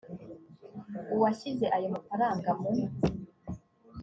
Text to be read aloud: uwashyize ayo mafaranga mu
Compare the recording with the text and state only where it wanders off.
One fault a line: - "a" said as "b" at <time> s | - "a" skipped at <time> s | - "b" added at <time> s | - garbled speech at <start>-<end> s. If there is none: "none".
none